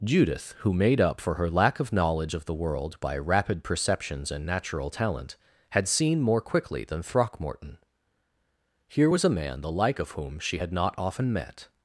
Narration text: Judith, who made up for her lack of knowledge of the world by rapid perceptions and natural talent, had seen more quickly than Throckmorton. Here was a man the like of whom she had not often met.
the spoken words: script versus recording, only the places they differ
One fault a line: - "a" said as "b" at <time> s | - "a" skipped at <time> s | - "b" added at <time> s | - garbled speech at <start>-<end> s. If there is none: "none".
none